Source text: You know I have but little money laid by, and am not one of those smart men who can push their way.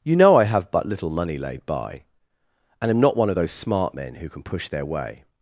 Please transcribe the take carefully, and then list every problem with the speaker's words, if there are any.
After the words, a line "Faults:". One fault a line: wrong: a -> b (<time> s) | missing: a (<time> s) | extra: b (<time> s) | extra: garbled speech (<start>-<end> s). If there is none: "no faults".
You know I have but little money laid by, and am not one of those smart men who can push their way.
Faults:
no faults